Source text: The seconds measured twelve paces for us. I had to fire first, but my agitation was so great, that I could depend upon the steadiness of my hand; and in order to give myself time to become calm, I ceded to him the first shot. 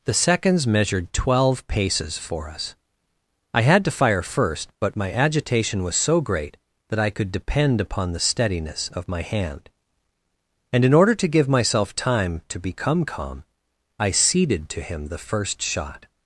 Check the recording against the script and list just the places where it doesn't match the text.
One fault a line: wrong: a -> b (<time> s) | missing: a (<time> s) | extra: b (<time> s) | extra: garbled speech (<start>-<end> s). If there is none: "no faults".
no faults